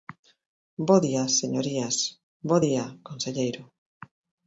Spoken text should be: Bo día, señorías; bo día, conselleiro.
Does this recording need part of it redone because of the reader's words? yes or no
no